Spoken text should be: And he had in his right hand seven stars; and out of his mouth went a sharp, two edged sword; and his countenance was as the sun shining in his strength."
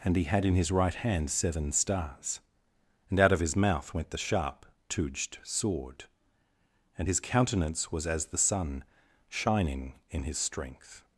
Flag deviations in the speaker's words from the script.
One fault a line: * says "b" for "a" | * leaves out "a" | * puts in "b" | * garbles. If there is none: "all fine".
* says "the" for "a"